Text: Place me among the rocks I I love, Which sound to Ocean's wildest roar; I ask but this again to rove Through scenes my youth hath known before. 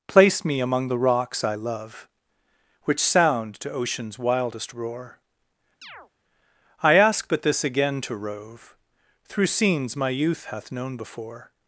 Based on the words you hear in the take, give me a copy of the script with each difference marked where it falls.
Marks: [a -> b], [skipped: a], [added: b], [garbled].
Place me among the rocks I [skipped: I] love, Which sound to Ocean's wildest roar; I ask but this again to rove Through scenes my youth hath known before.